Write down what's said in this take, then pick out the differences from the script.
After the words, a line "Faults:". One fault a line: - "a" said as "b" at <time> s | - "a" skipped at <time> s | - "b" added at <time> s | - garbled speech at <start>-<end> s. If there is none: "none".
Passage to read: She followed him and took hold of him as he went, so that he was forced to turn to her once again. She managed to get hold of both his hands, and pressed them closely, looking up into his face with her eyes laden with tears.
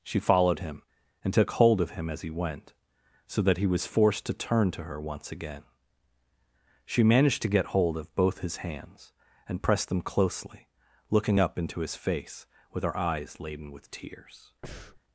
She followed him and took hold of him as he went, so that he was forced to turn to her once again. She managed to get hold of both his hands, and pressed them closely, looking up into his face with her eyes laden with tears.
Faults:
none